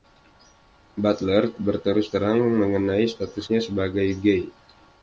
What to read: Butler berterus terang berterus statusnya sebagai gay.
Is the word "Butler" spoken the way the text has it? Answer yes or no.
yes